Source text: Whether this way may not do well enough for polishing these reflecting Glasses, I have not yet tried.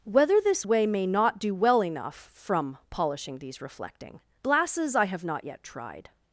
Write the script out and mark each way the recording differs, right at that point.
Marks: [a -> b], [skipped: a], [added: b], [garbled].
Whether this way may not do well enough [for -> from] polishing these reflecting Glasses, I have not yet tried.